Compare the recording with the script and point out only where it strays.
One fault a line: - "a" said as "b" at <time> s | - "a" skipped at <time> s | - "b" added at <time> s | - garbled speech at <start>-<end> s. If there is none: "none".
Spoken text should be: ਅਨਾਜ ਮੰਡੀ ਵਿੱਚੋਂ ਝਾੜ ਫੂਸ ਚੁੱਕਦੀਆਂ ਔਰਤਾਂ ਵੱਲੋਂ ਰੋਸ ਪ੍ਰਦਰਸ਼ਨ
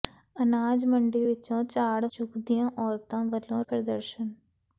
- "ਫੂਸ" skipped at 2.1 s
- "ਰੋਸ" skipped at 3.6 s